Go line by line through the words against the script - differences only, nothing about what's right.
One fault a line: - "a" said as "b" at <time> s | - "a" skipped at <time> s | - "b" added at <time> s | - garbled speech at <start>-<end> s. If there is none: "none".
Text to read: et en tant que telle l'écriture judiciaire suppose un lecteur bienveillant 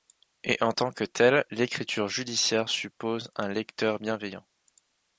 none